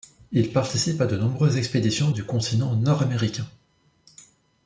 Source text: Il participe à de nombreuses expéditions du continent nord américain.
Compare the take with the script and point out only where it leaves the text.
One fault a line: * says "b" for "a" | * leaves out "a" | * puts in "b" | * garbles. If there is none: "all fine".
all fine